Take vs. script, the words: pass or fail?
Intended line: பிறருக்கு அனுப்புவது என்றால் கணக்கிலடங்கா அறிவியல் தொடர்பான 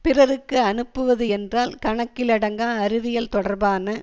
pass